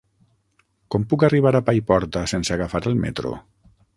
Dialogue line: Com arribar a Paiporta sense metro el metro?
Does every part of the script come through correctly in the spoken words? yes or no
no